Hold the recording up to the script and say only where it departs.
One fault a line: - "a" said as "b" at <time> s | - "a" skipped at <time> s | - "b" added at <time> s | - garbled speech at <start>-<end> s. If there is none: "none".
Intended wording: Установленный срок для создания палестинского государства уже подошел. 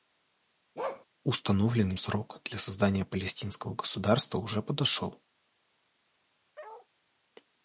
none